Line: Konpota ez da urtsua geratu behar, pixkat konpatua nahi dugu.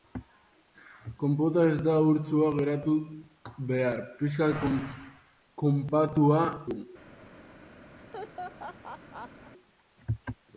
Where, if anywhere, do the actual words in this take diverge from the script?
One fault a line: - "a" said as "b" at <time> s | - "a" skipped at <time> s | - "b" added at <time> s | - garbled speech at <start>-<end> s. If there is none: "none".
- "nahi" skipped at 6.4 s